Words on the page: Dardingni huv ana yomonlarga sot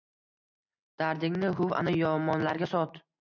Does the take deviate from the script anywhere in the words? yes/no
no